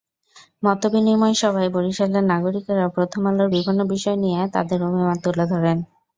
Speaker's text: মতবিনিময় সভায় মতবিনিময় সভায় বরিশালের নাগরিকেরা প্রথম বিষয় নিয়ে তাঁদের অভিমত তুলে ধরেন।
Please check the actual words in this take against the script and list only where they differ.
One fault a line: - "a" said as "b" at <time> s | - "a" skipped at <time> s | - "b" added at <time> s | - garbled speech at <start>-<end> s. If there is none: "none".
- "মতবিনিময় সভায়" skipped at 1.7 s
- "আলোর বিভিন্ন" added at 3.3 s